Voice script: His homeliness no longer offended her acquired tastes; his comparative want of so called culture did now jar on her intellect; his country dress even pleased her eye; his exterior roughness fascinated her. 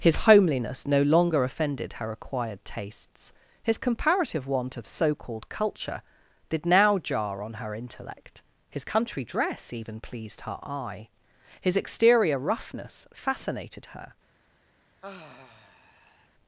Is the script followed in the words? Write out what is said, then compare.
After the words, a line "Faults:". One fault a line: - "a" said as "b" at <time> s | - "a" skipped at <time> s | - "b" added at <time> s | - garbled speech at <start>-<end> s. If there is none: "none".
His homeliness no longer offended her acquired tastes; his comparative want of so called culture did now jar on her intellect; his country dress even pleased her eye; his exterior roughness fascinated her.
Faults:
none